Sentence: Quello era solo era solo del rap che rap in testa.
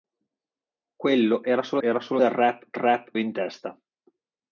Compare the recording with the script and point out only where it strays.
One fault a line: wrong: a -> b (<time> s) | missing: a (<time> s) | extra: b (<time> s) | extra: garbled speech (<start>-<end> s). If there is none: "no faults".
no faults